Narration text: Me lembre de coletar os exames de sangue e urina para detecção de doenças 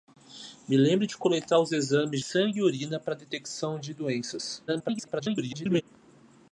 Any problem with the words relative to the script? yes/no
yes